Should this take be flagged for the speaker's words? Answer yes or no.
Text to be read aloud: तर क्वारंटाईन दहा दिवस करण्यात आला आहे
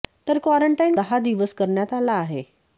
no